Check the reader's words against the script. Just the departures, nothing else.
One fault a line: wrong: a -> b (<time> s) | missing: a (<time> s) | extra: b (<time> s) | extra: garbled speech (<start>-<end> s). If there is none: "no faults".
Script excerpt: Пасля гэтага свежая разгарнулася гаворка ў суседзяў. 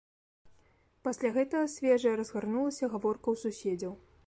no faults